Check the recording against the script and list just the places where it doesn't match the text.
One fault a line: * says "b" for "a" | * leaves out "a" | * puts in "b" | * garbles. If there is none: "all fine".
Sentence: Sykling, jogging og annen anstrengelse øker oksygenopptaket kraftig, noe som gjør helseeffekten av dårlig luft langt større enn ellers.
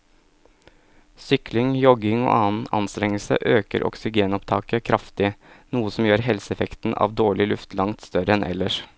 all fine